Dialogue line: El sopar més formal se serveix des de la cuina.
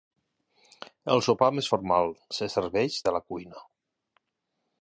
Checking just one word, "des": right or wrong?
wrong